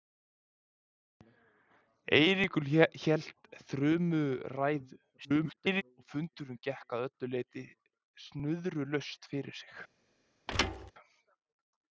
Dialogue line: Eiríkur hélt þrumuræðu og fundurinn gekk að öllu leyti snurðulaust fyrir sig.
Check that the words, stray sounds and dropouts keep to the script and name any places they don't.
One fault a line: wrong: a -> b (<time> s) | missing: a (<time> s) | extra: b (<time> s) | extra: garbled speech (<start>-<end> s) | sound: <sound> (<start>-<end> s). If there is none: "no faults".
extra: garbled speech (5.2-5.8 s)
sound: thud (10.5-10.9 s)